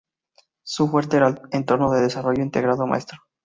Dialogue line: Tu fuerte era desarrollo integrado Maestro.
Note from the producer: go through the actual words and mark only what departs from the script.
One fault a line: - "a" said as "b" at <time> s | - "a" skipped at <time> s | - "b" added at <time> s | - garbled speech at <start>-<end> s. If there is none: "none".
- "Tu" said as "Su" at 0.6 s
- "el entorno de" added at 1.3 s